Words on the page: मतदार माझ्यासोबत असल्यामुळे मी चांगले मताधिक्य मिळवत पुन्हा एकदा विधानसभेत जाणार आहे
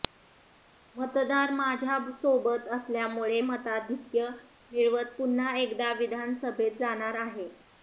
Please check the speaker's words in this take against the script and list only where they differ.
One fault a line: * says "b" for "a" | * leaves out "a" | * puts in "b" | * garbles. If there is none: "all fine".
* leaves out "मी चांगले"